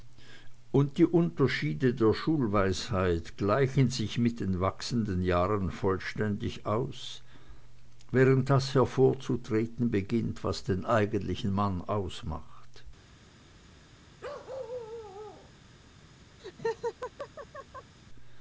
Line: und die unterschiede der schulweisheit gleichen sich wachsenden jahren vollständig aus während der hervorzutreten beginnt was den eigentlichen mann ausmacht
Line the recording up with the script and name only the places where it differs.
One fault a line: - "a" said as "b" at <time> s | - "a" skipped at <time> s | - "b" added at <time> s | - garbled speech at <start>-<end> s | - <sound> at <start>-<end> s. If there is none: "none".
- "mit den" added at 4.2 s
- "der" said as "das" at 8.5 s
- bark at 14.2-15.5 s
- laugh at 16.4-17.9 s